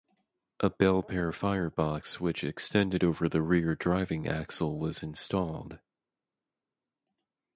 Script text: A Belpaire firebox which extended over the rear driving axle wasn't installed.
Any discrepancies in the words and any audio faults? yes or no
yes